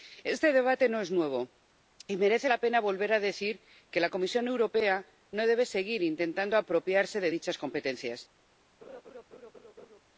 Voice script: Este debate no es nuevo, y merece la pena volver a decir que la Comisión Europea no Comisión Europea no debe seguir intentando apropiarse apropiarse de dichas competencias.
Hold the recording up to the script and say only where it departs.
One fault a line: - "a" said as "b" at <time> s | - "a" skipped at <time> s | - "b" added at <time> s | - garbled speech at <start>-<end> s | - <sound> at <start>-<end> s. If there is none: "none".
- "Comisión Europea no" skipped at 5.5 s
- "apropiarse" skipped at 7.2 s
- laugh at 8.8-10.0 s